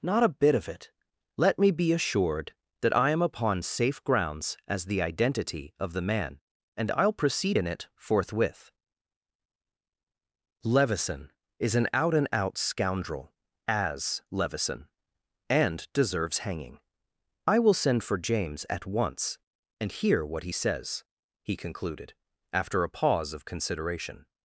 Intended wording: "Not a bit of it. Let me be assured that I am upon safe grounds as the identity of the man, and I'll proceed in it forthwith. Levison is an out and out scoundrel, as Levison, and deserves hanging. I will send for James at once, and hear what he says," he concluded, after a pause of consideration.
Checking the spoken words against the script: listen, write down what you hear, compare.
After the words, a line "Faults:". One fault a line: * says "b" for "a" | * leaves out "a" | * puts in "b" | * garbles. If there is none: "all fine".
"Not a bit of it. Let me be assured that I am upon safe grounds as the identity of the man, and I'll proceed in it forthwith. Levison is an out and out scoundrel, as Levison, and deserves hanging. I will send for James at once, and hear what he says," he concluded, after a pause of consideration.
Faults:
all fine